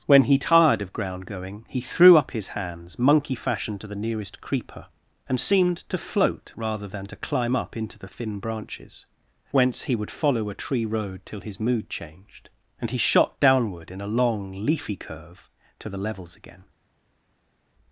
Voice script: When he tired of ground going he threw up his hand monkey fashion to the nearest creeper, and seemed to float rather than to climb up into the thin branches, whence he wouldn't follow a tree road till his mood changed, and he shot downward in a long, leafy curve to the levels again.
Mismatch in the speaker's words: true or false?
true